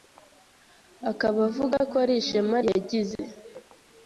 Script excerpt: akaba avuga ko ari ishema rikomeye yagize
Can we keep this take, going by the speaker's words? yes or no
no